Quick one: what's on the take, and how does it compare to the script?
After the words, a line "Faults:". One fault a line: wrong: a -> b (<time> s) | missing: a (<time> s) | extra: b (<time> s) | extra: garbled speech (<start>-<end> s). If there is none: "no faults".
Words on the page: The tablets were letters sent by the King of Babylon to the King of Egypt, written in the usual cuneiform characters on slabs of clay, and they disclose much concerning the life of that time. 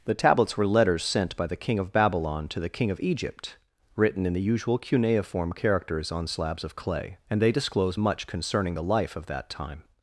The tablets were letters sent by the King of Babylon to the King of Egypt, written in the usual cuneiform characters on slabs of clay, and they disclose much concerning the life of that time.
Faults:
no faults